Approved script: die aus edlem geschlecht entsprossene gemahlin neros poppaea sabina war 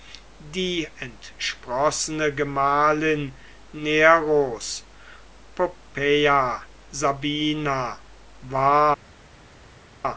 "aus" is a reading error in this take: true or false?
true